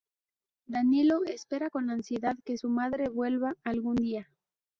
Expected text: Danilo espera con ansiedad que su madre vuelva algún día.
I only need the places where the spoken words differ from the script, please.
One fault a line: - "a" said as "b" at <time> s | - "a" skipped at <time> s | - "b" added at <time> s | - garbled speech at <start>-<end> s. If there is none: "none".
none